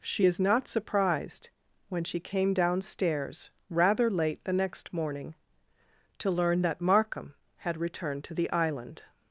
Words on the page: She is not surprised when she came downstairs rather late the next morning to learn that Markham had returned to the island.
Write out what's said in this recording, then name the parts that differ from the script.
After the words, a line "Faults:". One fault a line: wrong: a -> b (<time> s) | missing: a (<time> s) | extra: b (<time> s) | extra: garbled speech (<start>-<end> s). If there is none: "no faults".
She is not surprised when she came downstairs rather late the next morning to learn that Markham had returned to the island.
Faults:
no faults